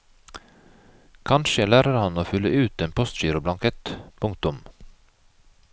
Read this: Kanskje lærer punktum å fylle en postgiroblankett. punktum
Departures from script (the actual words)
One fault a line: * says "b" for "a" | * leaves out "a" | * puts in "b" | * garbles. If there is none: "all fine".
* says "han" for "punktum"
* puts in "ut"